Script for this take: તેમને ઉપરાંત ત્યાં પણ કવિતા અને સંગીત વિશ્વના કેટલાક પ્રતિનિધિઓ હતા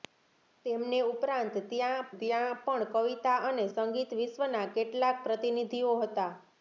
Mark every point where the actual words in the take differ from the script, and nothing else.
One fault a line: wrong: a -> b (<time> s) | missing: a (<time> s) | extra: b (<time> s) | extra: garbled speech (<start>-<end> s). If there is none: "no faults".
extra: ત્યાં (2.2 s)